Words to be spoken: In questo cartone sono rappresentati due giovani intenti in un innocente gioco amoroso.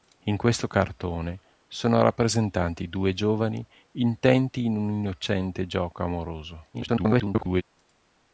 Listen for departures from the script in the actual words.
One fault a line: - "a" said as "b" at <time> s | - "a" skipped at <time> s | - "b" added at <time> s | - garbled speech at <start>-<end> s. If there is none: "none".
- garbled speech at 6.7-7.6 s